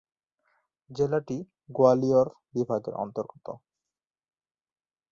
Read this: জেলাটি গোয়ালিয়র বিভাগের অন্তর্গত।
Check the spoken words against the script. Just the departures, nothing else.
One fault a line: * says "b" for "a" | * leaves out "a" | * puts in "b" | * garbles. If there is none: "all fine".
all fine